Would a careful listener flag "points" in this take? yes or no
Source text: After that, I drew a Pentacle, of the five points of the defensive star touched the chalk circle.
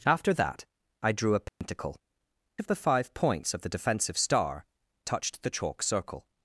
no